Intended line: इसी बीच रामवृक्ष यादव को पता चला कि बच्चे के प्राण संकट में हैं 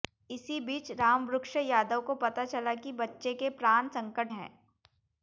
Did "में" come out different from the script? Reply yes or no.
yes